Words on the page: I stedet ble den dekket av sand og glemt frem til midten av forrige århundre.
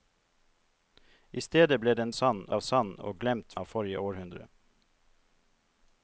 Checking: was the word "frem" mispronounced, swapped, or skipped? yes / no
yes